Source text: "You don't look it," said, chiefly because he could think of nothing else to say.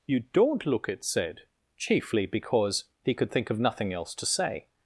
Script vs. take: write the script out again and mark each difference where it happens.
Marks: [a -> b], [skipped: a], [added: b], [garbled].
"You don't look it," said, chiefly because he could think of nothing else to say.